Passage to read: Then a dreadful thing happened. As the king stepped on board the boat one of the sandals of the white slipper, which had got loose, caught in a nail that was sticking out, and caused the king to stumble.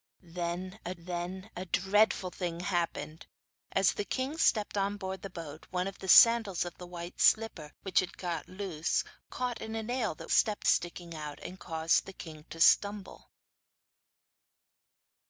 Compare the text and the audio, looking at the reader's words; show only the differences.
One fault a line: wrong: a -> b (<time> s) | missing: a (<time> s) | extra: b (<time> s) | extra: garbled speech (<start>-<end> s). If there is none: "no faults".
extra: then a (1.0 s)
wrong: was -> stepped (10.3 s)